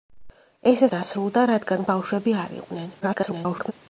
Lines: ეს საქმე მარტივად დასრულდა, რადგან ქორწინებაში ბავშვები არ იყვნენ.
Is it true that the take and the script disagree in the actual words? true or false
true